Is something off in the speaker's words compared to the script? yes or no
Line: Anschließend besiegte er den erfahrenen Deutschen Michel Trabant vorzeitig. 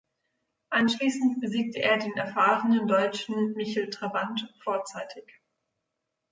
no